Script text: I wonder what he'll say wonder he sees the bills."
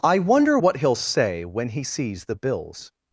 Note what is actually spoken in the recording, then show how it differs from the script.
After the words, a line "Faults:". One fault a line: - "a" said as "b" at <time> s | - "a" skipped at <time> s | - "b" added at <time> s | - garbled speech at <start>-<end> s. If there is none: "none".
I wonder what he'll say when he sees the bills."
Faults:
- "wonder" said as "when" at 1.4 s